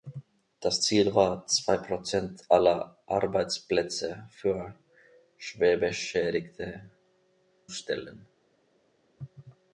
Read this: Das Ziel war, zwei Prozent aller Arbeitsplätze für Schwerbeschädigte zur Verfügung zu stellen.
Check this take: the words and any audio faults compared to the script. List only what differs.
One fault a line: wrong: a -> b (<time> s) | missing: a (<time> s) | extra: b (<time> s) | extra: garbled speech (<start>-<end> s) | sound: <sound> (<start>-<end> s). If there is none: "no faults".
missing: zur Verfügung zu (6.9 s)